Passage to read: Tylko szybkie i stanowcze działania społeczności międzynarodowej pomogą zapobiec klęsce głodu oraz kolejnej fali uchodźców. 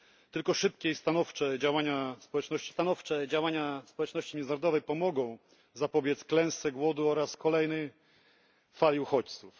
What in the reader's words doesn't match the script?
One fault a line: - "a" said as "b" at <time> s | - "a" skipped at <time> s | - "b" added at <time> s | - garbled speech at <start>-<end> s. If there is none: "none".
- "stanowcze działania społeczności" added at 2.7 s